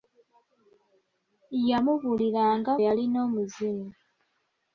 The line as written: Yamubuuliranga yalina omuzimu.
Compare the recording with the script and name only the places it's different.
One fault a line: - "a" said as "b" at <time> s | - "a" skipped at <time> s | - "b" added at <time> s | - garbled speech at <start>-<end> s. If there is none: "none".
none